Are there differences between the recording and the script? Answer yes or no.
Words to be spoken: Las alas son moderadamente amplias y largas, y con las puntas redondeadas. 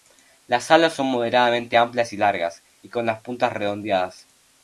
no